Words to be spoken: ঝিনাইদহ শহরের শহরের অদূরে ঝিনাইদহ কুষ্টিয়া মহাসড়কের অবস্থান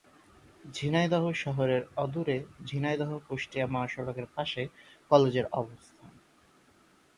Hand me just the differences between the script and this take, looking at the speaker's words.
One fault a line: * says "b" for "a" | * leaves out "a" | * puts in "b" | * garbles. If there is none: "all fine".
* leaves out "শহরের"
* puts in "পাশে কলেজের"